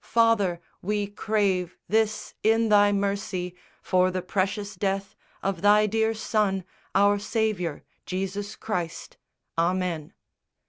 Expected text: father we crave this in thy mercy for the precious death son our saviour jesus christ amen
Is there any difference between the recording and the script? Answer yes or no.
yes